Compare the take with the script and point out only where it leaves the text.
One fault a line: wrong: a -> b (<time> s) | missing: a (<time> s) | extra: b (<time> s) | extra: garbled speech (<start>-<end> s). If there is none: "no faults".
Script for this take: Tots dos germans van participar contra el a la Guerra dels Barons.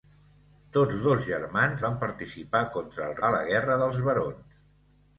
no faults